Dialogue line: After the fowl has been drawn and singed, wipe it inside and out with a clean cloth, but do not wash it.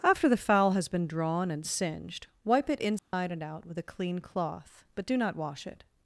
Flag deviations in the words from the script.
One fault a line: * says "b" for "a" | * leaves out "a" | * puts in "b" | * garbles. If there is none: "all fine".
all fine